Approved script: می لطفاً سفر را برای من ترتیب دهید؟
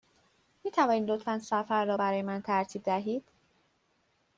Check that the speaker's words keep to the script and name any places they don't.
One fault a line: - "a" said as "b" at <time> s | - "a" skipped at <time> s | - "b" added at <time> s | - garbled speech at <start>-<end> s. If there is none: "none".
- "توانید" added at 0.7 s